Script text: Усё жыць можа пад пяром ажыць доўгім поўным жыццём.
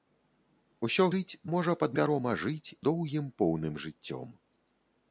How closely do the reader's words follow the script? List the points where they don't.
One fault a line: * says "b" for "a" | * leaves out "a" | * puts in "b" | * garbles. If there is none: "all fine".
all fine